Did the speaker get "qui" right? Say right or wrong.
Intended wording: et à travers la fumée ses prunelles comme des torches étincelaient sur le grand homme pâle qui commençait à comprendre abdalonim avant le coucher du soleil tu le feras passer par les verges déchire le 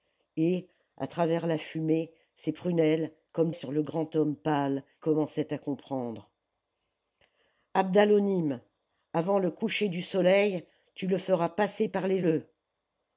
wrong